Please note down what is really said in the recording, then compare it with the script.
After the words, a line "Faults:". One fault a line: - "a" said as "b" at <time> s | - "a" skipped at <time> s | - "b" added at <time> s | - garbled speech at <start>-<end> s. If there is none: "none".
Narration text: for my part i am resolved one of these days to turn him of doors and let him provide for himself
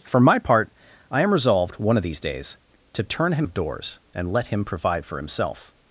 for my part i am resolved one of these days to turn him of doors and let him provide for himself
Faults:
none